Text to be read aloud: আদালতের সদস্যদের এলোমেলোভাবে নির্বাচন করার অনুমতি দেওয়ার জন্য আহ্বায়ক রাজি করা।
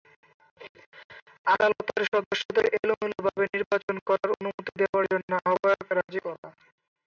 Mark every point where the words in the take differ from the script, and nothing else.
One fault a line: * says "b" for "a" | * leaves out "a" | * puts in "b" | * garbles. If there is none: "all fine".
all fine